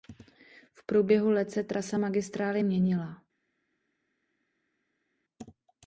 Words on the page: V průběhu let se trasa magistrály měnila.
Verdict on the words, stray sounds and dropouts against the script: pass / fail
pass